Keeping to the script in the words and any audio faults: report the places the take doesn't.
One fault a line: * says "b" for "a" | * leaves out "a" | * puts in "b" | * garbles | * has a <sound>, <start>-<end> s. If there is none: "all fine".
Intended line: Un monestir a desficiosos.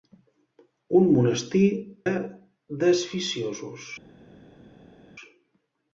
all fine